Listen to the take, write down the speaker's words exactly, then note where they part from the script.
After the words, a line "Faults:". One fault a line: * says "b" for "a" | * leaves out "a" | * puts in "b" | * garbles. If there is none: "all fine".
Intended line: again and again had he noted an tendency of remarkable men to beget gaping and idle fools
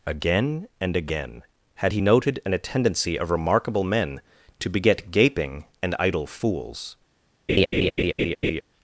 again and again had he noted an tendency of remarkable men to beget gaping and idle fools
Faults:
all fine